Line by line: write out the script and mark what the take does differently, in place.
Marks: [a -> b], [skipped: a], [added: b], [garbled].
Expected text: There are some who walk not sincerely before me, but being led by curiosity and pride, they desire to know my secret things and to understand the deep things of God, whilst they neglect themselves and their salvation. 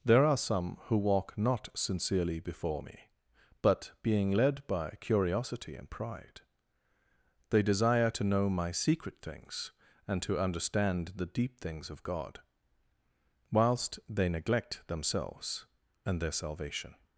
There are some who walk not sincerely before me, but being led by curiosity and pride, they desire to know my secret things and to understand the deep things of God, whilst they neglect themselves and their salvation.